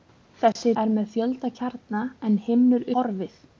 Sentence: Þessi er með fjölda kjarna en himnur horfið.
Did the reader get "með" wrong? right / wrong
right